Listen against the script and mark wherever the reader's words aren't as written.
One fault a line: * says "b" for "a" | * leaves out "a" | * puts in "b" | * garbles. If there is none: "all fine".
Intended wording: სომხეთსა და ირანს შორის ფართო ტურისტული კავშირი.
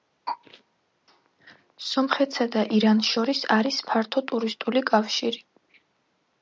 * puts in "არის"